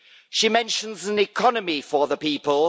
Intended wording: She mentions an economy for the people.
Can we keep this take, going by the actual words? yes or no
yes